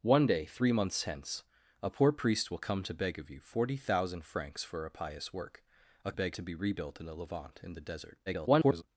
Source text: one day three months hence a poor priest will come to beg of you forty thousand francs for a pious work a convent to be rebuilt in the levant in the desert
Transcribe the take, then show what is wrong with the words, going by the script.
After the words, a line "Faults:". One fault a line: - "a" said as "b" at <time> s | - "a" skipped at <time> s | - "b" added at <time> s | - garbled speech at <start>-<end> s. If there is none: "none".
one day three months hence a poor priest will come to beg of you forty thousand francs for a pious work a beg to be rebuilt in the levant in the desert [garbled]
Faults:
- "convent" said as "beg" at 6.1 s
- garbled speech at 8.3-8.8 s